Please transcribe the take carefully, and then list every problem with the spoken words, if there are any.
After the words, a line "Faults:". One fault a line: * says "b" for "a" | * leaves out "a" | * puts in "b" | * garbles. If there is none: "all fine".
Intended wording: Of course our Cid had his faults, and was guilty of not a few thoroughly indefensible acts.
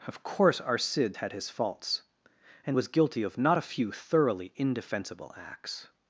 Of course our Cid had his faults, and was guilty of not a few thoroughly indefensible acts.
Faults:
all fine